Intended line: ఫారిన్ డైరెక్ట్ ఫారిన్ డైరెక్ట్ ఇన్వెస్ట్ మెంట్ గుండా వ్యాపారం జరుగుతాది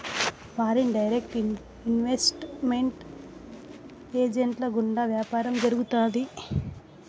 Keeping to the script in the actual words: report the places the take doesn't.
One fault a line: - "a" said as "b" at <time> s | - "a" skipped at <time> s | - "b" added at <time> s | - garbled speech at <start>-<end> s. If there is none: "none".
- "ఫారిన్ డైరెక్ట్" skipped at 1.4 s
- "ఏజెంట్ల" added at 4.1 s